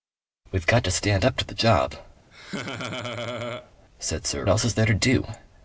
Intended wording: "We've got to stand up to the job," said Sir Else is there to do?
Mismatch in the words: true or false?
false